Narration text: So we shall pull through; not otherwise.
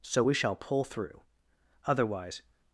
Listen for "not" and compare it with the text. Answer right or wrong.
wrong